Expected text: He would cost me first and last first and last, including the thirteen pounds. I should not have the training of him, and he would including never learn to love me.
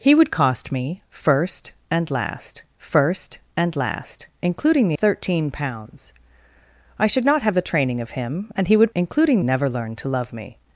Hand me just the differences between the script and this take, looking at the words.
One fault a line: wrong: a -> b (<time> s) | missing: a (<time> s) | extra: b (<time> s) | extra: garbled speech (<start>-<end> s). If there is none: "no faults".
no faults